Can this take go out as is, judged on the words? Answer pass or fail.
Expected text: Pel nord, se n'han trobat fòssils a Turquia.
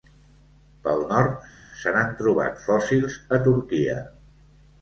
pass